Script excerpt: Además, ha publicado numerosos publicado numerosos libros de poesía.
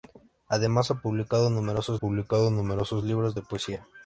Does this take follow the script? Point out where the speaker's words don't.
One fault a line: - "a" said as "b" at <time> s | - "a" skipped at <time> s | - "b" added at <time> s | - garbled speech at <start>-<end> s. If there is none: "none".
none